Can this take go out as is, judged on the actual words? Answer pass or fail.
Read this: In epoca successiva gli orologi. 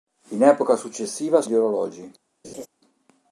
pass